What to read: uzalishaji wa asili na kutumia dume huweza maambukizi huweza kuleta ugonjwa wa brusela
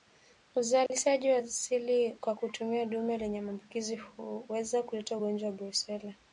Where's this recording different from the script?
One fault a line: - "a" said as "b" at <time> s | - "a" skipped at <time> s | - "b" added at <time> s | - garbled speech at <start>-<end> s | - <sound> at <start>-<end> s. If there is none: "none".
- dropout at 0.9-0.9 s
- "na" said as "kwa" at 2.2 s
- "huweza" said as "lenye" at 3.2 s